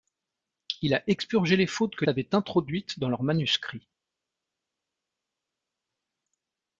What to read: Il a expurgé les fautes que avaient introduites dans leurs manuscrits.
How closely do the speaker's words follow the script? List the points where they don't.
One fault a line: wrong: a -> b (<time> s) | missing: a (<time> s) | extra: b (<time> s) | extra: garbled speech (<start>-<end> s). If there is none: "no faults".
no faults